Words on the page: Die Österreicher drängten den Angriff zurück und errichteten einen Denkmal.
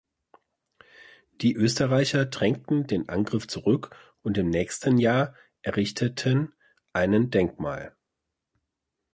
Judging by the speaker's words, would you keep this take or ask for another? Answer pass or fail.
fail